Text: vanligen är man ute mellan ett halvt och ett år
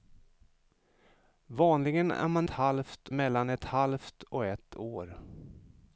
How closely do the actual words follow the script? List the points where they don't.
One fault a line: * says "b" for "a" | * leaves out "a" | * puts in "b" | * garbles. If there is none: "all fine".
* says "halvt" for "ute"